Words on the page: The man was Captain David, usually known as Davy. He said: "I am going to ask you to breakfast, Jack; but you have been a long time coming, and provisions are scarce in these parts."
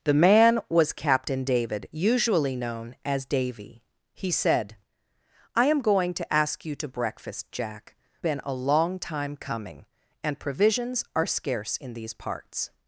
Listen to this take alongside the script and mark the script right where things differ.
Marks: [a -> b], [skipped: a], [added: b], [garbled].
The man was Captain David, usually known as Davy. He said: "I am going to ask you to breakfast, Jack; [skipped: but you have] been a long time coming, and provisions are scarce in these parts."